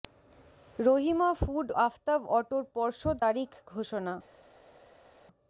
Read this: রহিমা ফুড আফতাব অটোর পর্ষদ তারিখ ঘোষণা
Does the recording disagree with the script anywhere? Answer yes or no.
no